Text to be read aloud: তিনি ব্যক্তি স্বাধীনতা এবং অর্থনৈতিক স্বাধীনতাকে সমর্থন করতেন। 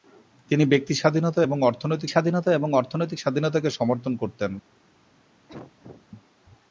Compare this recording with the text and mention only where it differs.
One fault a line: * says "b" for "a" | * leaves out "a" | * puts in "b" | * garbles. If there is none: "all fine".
* puts in "স্বাধীনতা এবং অর্থনৈতিক"